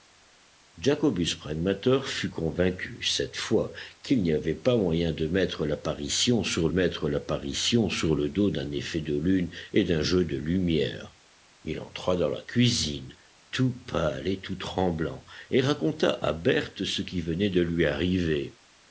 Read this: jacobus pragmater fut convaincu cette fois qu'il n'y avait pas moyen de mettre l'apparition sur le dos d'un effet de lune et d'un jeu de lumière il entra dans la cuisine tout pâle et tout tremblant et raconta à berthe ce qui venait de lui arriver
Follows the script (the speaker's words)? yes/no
no